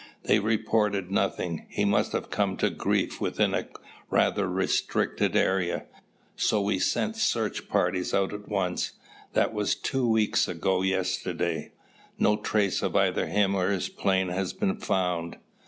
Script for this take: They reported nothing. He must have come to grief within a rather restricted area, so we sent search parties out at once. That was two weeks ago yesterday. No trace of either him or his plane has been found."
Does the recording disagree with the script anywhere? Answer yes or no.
no